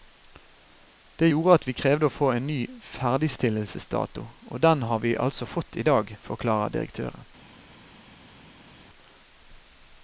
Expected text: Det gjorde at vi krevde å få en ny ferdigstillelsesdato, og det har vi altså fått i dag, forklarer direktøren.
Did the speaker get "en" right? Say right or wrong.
right